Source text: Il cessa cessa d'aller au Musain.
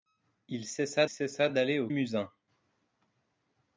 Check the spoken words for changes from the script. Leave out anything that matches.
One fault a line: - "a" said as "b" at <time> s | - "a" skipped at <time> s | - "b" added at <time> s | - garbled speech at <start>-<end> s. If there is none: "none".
none